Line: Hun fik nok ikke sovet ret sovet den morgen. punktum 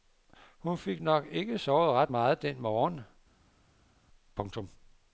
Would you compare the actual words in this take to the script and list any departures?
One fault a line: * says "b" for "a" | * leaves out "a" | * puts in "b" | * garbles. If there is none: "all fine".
* says "meget" for "sovet"